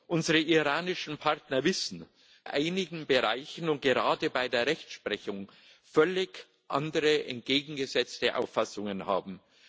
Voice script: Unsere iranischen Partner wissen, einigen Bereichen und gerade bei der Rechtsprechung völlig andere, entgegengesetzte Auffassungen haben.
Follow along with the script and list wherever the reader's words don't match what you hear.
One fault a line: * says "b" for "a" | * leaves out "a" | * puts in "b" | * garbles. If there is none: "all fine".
all fine